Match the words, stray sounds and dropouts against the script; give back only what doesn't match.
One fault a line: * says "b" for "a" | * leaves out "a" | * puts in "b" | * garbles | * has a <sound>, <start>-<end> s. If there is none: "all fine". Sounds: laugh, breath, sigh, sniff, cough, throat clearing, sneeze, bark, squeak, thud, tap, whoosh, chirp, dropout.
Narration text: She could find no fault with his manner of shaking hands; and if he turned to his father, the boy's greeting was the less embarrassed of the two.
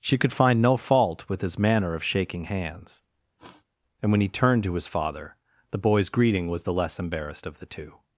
* has a sniff, 3.4-3.7 s
* says "when" for "if"